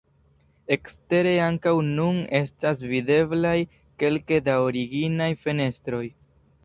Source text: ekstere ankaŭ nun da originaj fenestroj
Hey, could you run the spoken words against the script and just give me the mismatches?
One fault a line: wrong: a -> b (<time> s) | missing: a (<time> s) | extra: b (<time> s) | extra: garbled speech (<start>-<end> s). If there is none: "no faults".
extra: estas videblaj kelke (2.4 s)